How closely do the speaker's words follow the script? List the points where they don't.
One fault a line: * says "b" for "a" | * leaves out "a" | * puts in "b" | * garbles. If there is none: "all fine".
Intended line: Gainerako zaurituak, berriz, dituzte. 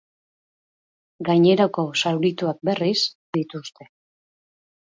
all fine